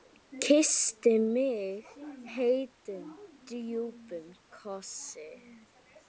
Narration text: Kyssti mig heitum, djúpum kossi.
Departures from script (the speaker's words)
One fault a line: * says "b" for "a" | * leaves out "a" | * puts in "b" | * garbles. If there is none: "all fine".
all fine